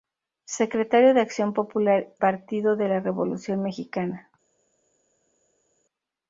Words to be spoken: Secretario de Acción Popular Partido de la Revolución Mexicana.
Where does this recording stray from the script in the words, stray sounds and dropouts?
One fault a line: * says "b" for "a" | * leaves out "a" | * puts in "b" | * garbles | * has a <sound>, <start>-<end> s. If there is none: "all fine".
all fine